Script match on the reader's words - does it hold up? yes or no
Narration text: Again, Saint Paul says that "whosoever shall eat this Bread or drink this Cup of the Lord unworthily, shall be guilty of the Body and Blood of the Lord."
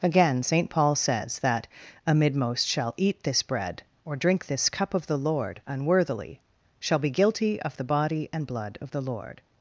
no